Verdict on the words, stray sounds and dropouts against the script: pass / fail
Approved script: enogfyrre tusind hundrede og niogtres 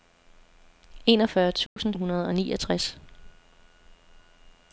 fail